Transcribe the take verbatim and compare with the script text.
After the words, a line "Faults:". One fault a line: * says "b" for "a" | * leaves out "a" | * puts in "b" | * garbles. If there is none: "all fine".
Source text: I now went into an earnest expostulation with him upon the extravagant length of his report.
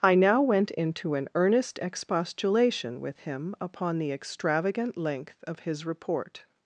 I now went into an earnest expostulation with him upon the extravagant length of his report.
Faults:
all fine